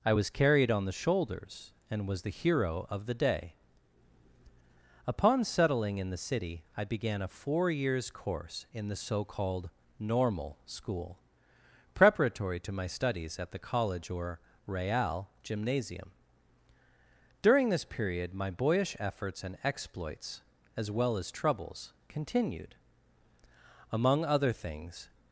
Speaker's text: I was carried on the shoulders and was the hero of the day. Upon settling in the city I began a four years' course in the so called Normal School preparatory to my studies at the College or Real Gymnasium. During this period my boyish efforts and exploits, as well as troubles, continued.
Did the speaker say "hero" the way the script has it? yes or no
yes